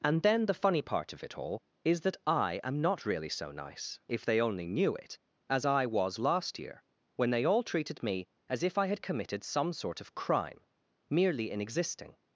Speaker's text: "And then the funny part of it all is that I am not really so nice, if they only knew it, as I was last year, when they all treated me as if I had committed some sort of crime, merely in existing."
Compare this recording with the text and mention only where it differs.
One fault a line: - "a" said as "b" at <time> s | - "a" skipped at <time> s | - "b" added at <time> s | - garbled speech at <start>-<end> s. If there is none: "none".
none